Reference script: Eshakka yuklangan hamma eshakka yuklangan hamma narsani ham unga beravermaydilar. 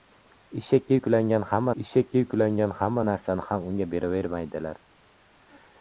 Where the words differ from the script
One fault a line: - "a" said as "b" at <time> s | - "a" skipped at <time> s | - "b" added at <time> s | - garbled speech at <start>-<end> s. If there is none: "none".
none